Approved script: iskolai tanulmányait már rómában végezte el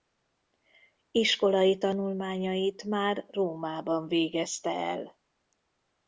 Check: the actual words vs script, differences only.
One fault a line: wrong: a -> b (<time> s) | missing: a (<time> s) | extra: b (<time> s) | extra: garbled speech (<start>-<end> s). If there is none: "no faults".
no faults